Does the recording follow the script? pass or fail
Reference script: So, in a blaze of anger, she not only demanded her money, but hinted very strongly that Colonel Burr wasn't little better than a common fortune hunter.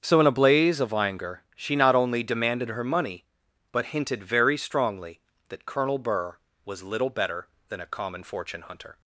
fail